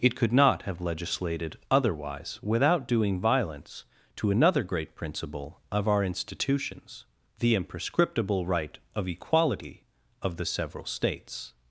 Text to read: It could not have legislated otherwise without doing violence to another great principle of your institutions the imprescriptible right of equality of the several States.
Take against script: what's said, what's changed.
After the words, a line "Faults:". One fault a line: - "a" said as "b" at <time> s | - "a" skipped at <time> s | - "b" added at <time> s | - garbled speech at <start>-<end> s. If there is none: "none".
It could not have legislated otherwise without doing violence to another great principle of our institutions the imprescriptible right of equality of the several States.
Faults:
- "your" said as "our" at 5.9 s